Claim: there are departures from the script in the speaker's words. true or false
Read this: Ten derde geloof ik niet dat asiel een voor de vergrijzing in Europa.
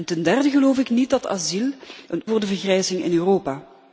false